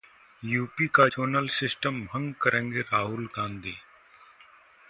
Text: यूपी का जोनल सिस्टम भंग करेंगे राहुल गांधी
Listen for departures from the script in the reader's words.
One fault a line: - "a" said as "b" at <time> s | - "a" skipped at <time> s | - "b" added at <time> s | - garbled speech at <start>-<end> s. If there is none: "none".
none